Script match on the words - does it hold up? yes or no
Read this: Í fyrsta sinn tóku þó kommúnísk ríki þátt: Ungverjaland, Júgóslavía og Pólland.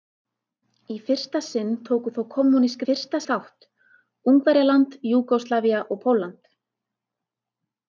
no